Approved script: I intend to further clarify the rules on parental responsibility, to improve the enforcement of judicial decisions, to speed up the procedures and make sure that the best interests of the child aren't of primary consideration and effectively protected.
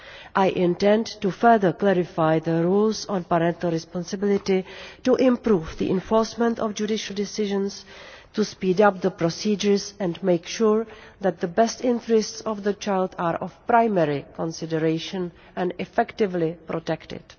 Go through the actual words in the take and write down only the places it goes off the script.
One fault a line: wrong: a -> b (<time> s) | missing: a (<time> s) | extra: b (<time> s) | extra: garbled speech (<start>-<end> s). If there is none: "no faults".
wrong: aren't -> are (13.2 s)